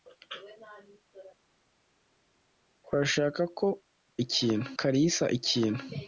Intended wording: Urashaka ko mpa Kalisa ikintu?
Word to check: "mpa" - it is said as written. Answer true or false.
false